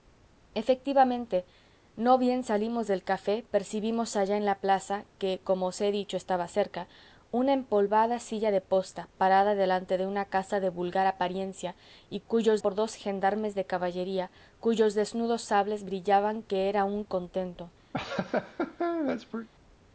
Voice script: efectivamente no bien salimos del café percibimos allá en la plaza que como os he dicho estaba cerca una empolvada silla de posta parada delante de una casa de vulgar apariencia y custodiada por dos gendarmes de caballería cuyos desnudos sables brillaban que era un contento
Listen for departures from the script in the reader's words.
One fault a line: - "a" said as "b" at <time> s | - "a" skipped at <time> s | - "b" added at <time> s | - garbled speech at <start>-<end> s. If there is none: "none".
- "custodiada" said as "cuyos" at 12.3 s